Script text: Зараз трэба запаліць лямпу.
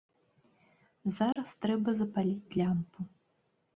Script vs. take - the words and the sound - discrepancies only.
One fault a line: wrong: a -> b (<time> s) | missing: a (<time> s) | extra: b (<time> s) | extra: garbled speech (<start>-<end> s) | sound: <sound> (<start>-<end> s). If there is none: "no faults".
sound: dropout (1.3-1.4 s)